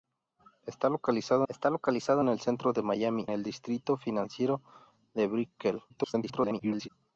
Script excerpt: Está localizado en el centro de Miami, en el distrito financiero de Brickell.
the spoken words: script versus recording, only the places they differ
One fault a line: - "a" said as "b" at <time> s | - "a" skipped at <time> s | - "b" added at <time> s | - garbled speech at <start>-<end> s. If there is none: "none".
- "está localizado" added at 1.5 s
- "en" skipped at 3.3 s
- garbled speech at 5.9-6.9 s